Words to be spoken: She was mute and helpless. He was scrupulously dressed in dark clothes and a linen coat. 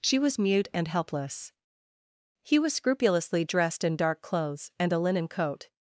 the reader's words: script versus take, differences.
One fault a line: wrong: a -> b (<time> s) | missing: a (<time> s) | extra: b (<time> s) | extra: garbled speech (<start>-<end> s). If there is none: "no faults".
no faults